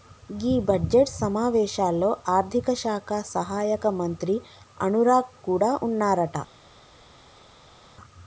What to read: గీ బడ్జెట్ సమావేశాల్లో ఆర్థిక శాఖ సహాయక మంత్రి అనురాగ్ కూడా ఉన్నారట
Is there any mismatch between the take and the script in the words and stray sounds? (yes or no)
no